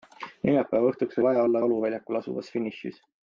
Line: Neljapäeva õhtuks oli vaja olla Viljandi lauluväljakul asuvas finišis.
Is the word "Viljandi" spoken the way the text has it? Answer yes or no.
no